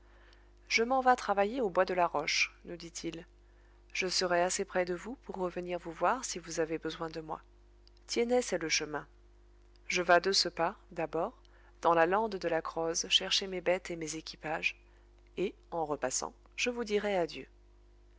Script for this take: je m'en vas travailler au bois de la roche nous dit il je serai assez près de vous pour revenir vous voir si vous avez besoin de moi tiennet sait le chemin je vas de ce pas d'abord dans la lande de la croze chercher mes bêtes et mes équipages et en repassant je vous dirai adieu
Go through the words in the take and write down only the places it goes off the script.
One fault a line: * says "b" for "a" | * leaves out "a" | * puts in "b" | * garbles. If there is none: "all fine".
all fine